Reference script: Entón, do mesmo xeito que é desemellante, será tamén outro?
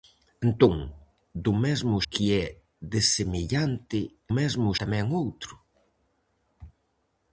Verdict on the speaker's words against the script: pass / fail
fail